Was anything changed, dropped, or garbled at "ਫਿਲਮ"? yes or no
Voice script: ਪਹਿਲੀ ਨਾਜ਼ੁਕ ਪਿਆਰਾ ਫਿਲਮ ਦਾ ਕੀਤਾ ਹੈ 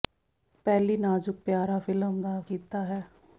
no